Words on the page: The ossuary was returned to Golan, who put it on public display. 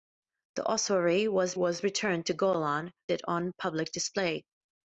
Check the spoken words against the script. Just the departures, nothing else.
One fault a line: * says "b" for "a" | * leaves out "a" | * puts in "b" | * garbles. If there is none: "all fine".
* puts in "was"
* leaves out "who put"